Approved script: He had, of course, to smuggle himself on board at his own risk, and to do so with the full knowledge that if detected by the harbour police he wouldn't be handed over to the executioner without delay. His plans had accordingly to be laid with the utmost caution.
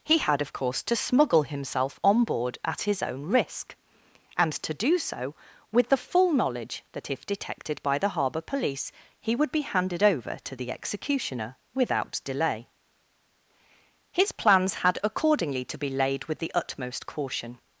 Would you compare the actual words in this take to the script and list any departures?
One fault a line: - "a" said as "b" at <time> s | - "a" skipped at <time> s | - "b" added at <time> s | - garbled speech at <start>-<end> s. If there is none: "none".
- "wouldn't" said as "would" at 9.3 s